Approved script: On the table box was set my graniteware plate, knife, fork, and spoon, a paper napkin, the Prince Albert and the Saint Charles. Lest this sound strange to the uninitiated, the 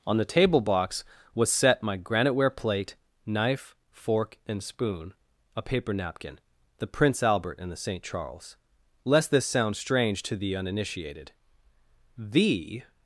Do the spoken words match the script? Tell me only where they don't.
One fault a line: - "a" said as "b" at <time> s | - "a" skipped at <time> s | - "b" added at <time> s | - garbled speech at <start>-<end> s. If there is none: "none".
none